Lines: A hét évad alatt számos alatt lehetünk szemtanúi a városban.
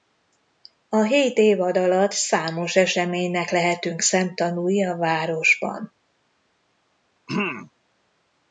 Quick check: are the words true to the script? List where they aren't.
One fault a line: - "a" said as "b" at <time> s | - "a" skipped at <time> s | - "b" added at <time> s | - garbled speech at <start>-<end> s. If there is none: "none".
- "alatt" said as "eseménynek" at 2.7 s